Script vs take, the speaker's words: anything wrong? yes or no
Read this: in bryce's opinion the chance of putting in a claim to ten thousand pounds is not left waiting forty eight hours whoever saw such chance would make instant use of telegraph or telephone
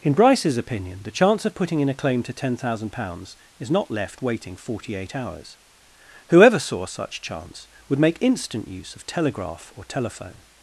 no